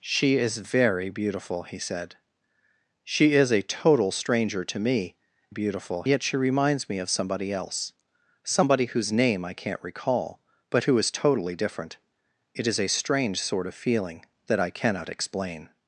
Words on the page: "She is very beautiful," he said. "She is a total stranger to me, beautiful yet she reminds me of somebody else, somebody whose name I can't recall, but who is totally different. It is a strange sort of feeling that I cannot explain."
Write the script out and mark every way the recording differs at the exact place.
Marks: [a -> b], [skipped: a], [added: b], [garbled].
"She is very beautiful," he said. "She is a total stranger to me, beautiful yet she reminds me of somebody else, somebody whose name I can't recall, but who is totally different. It is a strange sort of feeling that I cannot explain."